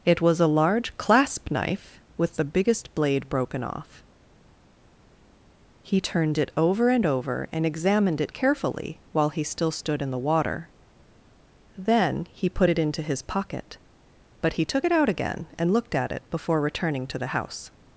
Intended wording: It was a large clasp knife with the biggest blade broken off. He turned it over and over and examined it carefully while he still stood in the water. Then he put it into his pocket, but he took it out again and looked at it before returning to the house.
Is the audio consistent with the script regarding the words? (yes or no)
yes